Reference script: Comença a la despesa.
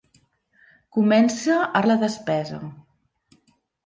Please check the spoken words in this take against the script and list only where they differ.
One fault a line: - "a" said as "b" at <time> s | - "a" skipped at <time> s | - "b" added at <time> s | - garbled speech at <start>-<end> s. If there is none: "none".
none